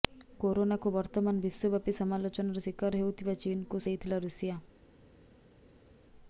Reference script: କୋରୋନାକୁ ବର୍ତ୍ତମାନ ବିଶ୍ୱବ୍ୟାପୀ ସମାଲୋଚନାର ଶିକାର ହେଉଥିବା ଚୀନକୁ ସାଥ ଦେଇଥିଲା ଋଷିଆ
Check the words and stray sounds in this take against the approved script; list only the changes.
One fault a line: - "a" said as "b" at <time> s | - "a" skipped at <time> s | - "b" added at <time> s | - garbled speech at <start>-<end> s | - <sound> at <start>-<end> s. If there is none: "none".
- "ସାଥ" skipped at 3.9 s